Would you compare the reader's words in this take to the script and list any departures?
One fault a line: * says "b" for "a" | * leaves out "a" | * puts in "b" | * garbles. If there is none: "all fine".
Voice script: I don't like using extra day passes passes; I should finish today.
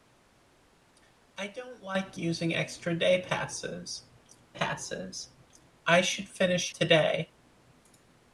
all fine